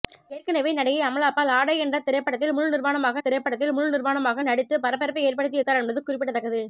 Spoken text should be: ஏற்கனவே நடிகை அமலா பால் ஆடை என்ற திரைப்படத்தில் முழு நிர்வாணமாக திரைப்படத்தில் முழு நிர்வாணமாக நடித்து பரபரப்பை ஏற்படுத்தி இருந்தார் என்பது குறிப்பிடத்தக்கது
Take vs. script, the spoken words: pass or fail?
pass